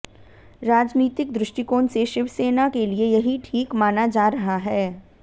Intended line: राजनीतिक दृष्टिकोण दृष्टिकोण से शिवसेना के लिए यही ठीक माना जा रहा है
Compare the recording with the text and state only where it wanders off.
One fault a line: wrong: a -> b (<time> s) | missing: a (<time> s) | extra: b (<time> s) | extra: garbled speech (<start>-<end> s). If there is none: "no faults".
missing: दृष्टिकोण (1.9 s)